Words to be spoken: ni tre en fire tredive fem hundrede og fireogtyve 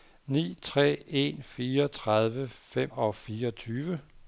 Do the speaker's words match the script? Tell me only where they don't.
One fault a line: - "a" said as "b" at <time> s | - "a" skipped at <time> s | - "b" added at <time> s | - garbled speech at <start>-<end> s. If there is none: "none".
- "hundrede" skipped at 2.9 s